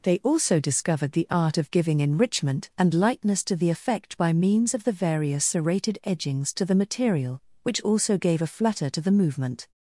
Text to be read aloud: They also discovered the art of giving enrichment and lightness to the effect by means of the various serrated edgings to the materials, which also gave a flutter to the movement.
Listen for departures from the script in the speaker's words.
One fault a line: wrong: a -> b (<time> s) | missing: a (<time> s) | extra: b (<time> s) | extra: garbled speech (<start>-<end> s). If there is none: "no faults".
wrong: materials -> material (6.7 s)